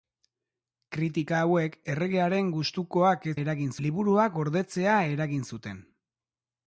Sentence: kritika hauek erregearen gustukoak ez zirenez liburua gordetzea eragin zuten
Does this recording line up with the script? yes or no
no